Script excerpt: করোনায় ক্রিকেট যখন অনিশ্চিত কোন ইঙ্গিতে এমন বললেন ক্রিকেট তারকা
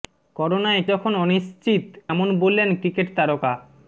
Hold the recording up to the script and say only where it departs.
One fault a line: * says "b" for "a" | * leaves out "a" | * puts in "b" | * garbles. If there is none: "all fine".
* leaves out "ক্রিকেট"
* leaves out "কোন ইঙ্গিতে"